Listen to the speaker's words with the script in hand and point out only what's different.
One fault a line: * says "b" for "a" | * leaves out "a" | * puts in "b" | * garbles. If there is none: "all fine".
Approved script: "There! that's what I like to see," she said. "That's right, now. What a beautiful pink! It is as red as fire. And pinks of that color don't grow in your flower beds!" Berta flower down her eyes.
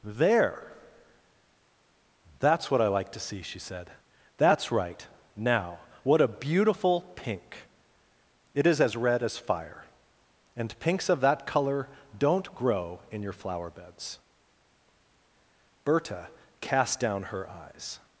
* says "cast" for "flower"